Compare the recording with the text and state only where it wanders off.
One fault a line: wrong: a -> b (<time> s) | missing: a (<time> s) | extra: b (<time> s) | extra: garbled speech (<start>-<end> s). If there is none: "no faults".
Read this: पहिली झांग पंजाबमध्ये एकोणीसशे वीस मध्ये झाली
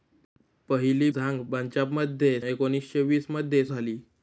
no faults